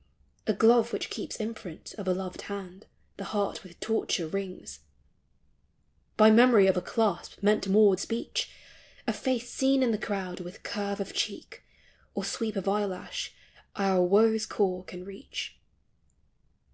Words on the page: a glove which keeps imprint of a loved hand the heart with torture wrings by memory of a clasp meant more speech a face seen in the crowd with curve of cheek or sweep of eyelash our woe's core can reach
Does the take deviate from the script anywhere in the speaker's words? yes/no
no